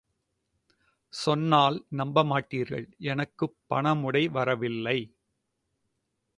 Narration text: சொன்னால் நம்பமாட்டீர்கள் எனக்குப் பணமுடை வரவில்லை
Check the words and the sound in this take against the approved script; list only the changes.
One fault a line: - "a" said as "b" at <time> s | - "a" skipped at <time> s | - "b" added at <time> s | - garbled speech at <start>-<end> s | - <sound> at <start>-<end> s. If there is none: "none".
none